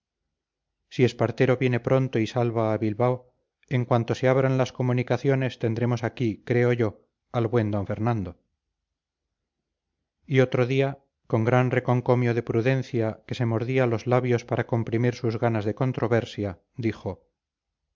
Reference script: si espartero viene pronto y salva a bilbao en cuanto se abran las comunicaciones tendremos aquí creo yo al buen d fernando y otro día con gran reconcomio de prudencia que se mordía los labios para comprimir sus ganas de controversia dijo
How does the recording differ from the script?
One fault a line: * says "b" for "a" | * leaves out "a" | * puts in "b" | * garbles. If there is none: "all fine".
all fine